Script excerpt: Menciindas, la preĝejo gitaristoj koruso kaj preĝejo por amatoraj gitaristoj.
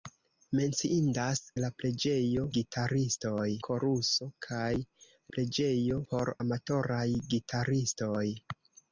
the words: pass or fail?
pass